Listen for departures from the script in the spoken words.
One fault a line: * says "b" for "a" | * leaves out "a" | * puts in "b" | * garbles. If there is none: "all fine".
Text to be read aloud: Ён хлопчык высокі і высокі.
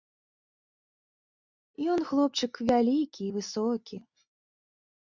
* says "вялікі" for "высокі"